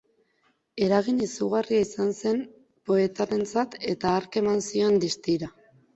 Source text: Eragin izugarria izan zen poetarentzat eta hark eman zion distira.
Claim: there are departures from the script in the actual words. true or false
false